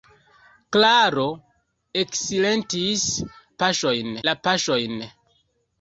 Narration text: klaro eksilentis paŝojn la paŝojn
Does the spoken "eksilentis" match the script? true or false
true